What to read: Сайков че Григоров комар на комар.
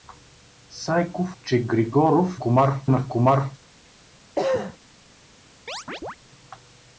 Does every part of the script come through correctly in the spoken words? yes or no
yes